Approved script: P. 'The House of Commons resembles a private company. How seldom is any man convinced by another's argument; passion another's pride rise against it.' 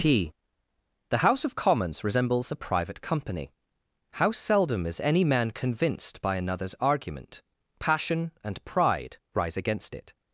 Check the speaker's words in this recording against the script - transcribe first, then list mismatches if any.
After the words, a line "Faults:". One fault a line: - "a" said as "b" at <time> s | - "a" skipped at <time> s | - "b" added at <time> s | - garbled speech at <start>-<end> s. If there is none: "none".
P. 'The House of Commons resembles a private company. How seldom is any man convinced by another's argument; passion and pride rise against it.'
Faults:
- "another's" said as "and" at 8.4 s